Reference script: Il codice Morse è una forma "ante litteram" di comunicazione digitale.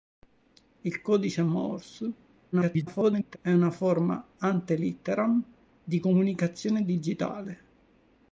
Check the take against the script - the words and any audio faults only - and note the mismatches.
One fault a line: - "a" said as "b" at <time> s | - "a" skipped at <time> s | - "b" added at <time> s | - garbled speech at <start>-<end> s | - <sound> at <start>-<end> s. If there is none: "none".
- garbled speech at 2.5-3.4 s